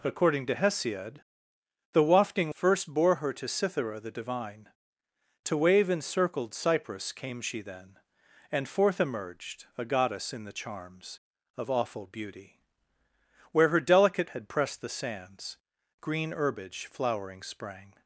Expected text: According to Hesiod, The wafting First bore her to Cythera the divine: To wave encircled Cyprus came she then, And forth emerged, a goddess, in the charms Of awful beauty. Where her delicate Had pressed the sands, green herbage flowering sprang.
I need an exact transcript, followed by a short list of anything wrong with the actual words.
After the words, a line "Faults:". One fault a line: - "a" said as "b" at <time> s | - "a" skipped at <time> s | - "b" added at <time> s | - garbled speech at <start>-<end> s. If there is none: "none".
According to Hesiod, The wafting First bore her to Cythera the divine: To wave encircled Cyprus came she then, And forth emerged, a goddess, in the charms Of awful beauty. Where her delicate Had pressed the sands, green herbage flowering sprang.
Faults:
none